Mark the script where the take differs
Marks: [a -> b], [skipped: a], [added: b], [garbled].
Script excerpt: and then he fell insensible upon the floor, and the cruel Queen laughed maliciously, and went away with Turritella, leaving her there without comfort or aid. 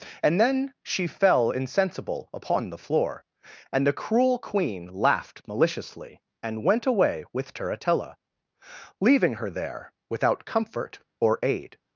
and then [he -> she] fell insensible upon the floor, and the cruel Queen laughed maliciously, and went away with Turritella, leaving her there without comfort or aid.